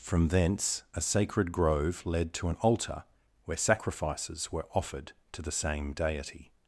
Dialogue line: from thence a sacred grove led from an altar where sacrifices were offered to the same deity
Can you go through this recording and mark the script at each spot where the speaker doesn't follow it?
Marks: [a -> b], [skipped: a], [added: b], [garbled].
from thence a sacred grove led [from -> to] an altar where sacrifices were offered to the same deity